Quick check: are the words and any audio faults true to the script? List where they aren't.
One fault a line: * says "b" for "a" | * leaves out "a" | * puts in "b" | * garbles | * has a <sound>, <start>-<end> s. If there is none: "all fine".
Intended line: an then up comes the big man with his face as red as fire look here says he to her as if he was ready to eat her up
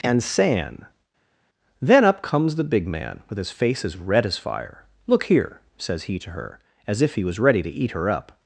* says "and san" for "an"